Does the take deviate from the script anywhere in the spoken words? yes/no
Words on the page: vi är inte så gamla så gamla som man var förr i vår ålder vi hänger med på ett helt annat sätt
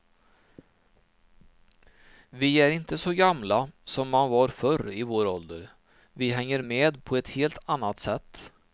yes